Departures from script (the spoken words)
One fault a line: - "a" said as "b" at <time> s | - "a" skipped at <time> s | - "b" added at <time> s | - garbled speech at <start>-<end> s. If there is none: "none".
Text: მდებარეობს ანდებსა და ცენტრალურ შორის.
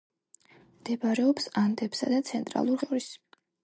none